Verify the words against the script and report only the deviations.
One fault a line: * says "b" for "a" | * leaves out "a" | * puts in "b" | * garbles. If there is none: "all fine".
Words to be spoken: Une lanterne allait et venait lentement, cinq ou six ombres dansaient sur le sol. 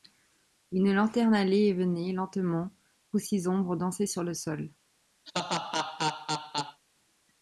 * leaves out "cinq"